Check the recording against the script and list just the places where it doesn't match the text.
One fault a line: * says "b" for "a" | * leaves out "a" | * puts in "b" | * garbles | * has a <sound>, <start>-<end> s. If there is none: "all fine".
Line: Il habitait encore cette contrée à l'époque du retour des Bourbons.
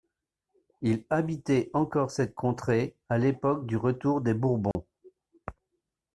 * has a dropout, 4.7-4.8 s